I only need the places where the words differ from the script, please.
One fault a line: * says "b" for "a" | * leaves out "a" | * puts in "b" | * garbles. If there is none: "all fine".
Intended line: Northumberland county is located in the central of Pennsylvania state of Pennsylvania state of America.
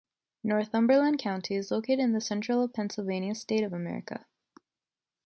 * leaves out "Pennsylvania state of"